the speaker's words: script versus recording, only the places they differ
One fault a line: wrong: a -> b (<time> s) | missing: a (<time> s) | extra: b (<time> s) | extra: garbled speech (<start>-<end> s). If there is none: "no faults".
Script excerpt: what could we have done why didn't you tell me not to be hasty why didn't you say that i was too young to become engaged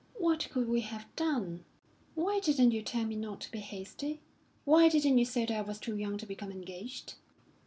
no faults